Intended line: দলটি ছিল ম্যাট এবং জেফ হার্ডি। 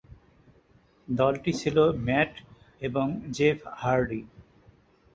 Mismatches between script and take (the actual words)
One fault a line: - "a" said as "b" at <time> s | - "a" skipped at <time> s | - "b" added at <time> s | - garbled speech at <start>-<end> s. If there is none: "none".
none